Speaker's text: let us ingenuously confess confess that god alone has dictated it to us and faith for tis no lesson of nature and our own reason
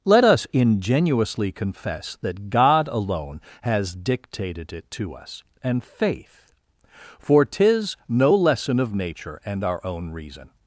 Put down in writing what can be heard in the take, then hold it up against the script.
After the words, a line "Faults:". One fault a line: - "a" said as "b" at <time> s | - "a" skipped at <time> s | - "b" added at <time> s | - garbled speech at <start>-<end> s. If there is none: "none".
let us ingenuously confess that god alone has dictated it to us and faith for tis no lesson of nature and our own reason
Faults:
- "confess" skipped at 2.2 s